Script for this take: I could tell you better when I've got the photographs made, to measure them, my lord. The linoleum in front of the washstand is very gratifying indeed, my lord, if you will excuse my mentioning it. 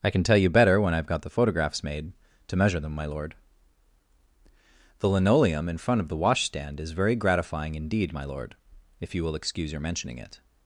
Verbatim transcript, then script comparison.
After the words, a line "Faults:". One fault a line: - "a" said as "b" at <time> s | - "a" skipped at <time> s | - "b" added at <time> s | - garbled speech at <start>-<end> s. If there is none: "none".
I can tell you better when I've got the photographs made, to measure them, my lord. The linoleum in front of the washstand is very gratifying indeed, my lord, if you will excuse your mentioning it.
Faults:
- "could" said as "can" at 0.1 s
- "my" said as "your" at 9.7 s